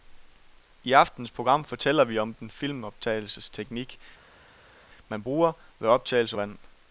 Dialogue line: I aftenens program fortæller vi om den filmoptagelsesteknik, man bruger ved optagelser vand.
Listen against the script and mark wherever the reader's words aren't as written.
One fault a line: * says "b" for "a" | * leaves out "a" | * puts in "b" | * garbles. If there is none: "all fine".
all fine